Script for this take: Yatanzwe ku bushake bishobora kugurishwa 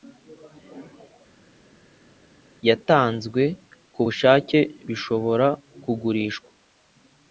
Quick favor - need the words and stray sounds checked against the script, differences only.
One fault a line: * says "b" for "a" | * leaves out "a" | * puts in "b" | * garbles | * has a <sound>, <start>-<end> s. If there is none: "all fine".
all fine